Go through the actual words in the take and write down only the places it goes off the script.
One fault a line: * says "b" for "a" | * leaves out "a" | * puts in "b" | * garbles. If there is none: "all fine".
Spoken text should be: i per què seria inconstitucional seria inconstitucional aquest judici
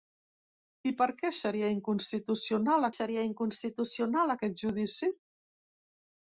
all fine